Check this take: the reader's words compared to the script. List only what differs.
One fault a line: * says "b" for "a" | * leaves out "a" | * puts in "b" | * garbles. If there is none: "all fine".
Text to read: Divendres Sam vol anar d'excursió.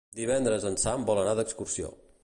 * puts in "en"